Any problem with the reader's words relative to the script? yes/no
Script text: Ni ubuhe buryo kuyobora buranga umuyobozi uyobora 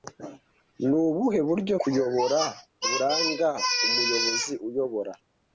no